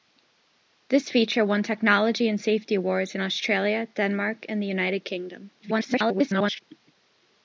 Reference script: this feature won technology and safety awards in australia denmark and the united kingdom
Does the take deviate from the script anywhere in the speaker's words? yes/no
yes